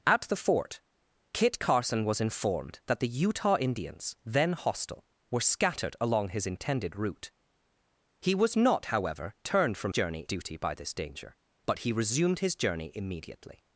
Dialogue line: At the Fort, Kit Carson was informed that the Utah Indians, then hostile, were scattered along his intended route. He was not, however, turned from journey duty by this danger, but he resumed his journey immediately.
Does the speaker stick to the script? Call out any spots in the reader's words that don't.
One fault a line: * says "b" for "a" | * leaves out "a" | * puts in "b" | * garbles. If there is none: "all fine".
all fine